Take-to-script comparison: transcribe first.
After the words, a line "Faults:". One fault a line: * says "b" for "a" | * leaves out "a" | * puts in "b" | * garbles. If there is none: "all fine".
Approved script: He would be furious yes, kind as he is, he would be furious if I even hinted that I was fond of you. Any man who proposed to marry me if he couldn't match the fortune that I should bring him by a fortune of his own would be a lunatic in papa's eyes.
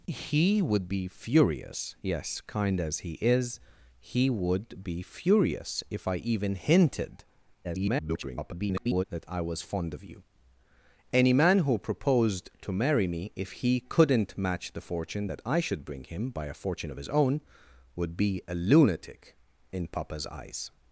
He would be furious yes, kind as he is, he would be furious if I even hinted [garbled] that I was fond of you. Any man who proposed to marry me if he couldn't match the fortune that I should bring him by a fortune of his own would be a lunatic in papa's eyes.
Faults:
* garbles